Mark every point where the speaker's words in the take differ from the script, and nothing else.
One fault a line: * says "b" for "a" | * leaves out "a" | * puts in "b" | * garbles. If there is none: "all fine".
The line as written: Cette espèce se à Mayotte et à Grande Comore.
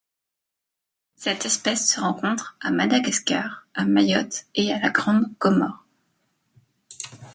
* puts in "rencontre"
* puts in "Madagascar à"
* puts in "la"